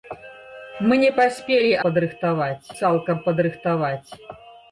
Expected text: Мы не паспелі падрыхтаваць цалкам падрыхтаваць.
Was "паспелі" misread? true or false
false